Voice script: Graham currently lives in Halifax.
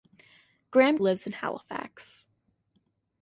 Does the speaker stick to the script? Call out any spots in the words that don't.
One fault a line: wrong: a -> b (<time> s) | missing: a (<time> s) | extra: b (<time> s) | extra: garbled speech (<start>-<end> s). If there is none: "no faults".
missing: currently (1.0 s)